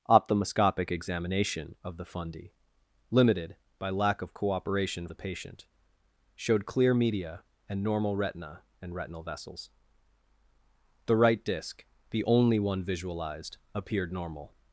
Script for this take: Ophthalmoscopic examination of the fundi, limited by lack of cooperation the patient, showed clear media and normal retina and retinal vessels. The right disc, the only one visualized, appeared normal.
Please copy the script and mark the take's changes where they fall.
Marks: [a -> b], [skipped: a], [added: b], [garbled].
Ophthalmoscopic examination of the fundi, limited by lack of cooperation the patient, showed clear media and normal retina and retinal vessels. The right disc, the only one visualized, appeared normal.